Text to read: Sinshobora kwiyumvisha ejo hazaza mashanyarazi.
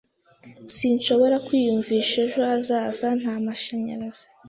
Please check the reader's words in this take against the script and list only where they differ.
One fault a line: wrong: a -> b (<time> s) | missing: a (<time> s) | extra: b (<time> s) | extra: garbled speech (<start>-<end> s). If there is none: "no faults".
extra: nta (3.2 s)